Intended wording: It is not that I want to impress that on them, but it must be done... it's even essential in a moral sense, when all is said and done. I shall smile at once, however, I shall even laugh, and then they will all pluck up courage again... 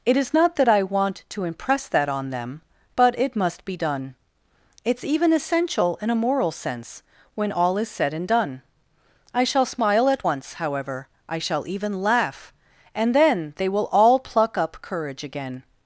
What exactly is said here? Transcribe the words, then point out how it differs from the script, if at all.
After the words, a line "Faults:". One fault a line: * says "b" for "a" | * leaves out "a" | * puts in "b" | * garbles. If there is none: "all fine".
It is not that I want to impress that on them, but it must be done... it's even essential in a moral sense, when all is said and done. I shall smile at once, however, I shall even laugh, and then they will all pluck up courage again...
Faults:
all fine